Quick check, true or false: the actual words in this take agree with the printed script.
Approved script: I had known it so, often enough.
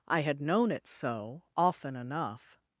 true